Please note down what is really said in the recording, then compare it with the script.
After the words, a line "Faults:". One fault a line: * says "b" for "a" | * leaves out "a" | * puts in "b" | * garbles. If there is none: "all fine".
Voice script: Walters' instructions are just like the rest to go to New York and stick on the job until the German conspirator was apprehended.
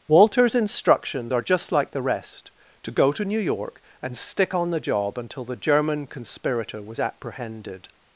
Walters' instructions are just like the rest to go to New York and stick on the job until the German conspirator was apprehended.
Faults:
all fine